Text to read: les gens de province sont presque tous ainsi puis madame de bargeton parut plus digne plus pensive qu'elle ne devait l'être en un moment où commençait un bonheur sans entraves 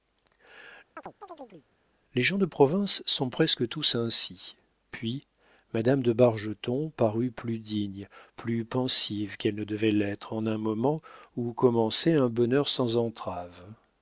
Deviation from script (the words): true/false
false